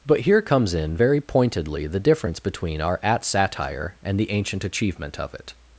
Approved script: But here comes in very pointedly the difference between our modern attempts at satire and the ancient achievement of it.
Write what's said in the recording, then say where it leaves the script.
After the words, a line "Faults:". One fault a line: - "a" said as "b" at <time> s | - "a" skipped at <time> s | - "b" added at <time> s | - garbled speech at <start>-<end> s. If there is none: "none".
But here comes in very pointedly the difference between our at satire and the ancient achievement of it.
Faults:
- "modern attempts" skipped at 3.0 s